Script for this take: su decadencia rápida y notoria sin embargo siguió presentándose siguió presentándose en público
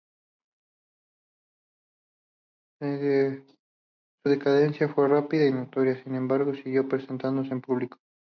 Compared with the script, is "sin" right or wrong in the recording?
right